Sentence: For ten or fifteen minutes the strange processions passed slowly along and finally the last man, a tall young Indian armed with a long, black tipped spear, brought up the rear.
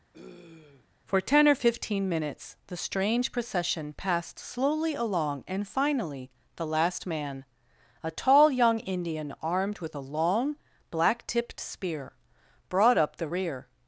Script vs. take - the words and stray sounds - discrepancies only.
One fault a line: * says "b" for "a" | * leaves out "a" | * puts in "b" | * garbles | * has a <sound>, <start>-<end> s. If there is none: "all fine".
* has a throat clearing, 0.1-0.9 s
* says "procession" for "processions"